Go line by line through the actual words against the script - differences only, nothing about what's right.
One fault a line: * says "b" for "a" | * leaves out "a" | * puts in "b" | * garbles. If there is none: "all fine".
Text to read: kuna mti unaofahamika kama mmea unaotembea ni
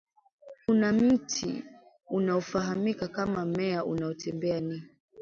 all fine